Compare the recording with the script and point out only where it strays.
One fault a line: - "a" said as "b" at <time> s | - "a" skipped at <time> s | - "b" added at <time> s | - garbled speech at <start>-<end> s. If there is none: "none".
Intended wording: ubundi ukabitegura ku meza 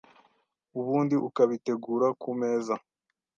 none